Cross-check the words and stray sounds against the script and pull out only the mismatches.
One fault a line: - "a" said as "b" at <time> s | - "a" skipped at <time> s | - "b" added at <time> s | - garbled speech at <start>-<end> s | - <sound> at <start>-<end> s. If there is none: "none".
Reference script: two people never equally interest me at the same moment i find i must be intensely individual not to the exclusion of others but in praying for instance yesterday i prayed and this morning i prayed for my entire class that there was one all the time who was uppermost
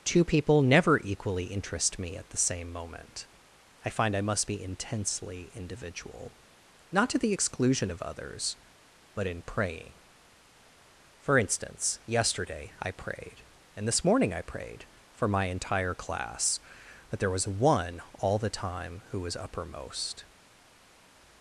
none